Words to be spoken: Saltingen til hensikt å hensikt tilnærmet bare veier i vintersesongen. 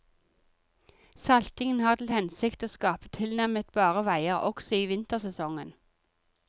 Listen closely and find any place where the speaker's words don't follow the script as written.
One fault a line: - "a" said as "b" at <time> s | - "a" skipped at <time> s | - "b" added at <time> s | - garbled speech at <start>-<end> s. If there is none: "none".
- "har" added at 1.9 s
- "hensikt" said as "skape" at 2.8 s
- "også" added at 4.5 s